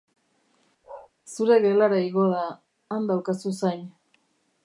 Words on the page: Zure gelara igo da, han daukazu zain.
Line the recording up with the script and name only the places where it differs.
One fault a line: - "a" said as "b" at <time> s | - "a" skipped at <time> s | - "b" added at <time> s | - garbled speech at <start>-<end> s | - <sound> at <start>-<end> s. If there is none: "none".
- bark at 0.8-1.1 s